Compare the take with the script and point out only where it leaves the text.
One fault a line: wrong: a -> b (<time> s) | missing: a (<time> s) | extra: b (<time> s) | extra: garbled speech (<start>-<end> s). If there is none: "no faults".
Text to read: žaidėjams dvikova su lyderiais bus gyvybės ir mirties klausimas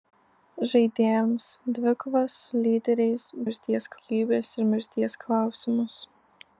wrong: bus -> mirties (3.4 s)